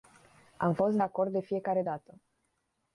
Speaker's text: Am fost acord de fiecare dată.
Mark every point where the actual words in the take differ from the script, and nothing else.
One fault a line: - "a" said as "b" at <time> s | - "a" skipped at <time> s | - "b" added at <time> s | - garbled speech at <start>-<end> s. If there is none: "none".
none